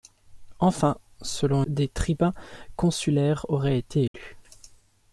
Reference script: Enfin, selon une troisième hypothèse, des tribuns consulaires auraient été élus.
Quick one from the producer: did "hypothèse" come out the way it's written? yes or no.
no